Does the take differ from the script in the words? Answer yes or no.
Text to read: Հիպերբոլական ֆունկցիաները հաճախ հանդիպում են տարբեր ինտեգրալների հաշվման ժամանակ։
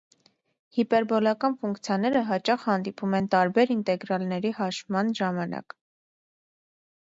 no